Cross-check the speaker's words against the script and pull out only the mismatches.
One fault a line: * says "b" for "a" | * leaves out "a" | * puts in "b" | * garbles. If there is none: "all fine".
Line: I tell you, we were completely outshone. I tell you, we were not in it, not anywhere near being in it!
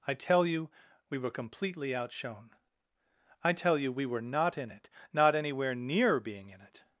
all fine